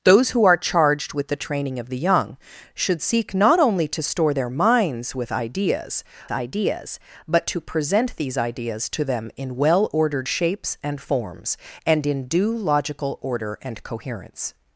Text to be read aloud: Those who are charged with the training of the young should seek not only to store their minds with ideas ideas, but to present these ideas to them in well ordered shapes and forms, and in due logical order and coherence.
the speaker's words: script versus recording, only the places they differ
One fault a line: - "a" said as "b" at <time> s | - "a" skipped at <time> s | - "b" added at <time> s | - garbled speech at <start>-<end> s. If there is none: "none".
none